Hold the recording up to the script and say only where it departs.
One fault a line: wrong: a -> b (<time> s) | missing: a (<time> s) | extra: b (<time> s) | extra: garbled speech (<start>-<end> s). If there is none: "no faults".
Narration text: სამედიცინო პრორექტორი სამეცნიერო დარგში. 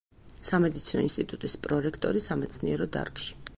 extra: ინსტიტუტის (1.1 s)